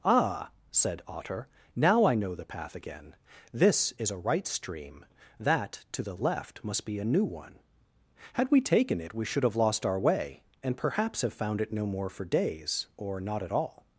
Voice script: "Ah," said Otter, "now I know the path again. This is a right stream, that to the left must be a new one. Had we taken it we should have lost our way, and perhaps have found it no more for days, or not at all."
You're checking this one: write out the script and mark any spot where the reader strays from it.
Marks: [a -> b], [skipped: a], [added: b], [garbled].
"Ah," said Otter, "now I know the path again. This is a right stream, that to the left must be a new one. Had we taken it we should have lost our way, and perhaps have found it no more for days, or not at all."